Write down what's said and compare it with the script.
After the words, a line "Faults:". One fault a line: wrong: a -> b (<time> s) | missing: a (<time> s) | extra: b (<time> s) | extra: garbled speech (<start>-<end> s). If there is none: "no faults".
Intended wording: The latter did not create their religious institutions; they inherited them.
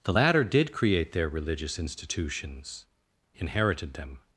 The latter did create their religious institutions; inherited them.
Faults:
missing: not (0.7 s)
missing: they (2.9 s)